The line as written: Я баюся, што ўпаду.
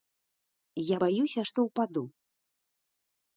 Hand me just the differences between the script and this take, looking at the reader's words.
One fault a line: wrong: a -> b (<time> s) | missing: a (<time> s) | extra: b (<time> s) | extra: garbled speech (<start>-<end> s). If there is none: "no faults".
no faults